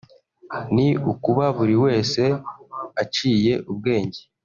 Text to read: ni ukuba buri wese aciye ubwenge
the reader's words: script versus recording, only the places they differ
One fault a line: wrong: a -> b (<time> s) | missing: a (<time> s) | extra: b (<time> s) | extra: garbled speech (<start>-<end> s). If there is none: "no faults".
no faults